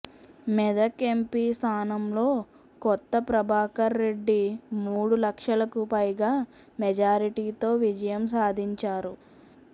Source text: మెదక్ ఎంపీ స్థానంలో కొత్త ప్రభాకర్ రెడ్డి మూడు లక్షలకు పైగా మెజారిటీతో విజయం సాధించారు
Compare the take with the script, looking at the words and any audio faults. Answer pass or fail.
pass